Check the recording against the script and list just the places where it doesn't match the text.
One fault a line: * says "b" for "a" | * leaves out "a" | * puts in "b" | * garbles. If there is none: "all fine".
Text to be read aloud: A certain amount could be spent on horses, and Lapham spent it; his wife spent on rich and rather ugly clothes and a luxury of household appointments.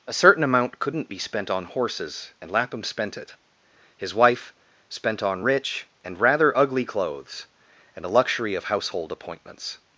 * says "couldn't" for "could"